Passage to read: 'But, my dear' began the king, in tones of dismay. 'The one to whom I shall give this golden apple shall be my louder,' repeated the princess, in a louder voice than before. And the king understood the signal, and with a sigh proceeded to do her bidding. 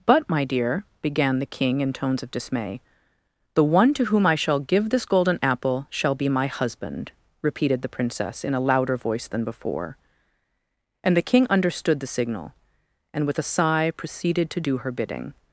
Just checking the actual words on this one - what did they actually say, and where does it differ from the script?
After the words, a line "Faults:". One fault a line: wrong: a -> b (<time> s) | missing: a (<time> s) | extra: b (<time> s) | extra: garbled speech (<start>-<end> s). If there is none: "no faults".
'But, my dear' began the king, in tones of dismay. 'The one to whom I shall give this golden apple shall be my husband,' repeated the princess, in a louder voice than before. And the king understood the signal, and with a sigh proceeded to do her bidding.
Faults:
wrong: louder -> husband (6.5 s)